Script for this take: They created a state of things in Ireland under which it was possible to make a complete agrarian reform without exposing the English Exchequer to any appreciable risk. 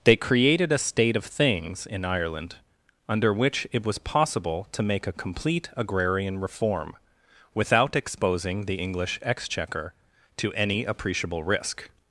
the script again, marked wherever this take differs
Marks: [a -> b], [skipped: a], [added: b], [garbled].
They created a state of things in Ireland under which it was possible to make a complete agrarian reform without exposing the English Exchequer to any appreciable risk.